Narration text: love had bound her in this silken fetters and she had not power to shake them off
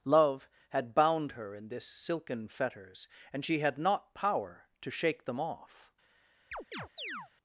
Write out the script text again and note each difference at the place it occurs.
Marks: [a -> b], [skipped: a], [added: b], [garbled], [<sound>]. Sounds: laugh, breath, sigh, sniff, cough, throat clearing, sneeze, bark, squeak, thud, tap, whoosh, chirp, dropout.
love had bound her in this silken fetters and she had not power to shake them off [chirp]